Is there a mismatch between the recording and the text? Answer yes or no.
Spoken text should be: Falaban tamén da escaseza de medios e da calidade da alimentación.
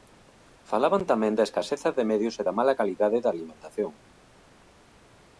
yes